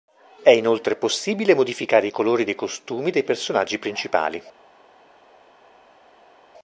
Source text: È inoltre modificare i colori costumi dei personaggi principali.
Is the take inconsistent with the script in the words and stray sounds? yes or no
yes